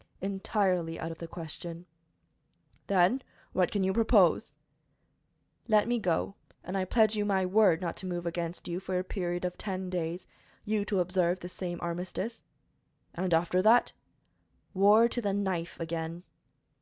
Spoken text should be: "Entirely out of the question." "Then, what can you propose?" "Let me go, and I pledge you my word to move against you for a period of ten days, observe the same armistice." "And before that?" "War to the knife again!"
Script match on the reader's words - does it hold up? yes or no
no